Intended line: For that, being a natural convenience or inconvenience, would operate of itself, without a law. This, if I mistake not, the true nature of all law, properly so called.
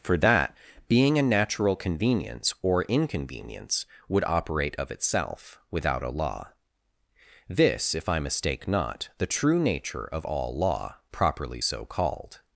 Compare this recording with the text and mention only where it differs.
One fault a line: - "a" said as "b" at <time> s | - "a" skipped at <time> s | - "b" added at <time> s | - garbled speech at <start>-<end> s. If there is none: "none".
none